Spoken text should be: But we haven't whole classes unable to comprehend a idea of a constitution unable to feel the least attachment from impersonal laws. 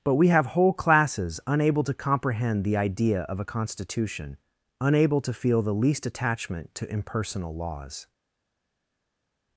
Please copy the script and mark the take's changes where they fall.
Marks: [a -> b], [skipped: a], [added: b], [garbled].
But we [haven't -> have] whole classes unable to comprehend [a -> the] idea of a constitution unable to feel the least attachment [from -> to] impersonal laws.